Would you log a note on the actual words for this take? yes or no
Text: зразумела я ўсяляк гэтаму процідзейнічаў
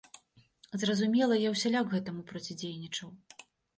no